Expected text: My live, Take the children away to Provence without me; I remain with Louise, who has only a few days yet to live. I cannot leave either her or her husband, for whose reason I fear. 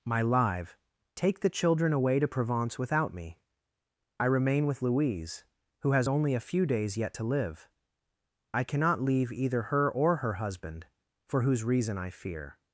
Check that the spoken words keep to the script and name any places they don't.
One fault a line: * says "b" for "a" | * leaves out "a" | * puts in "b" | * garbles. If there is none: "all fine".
all fine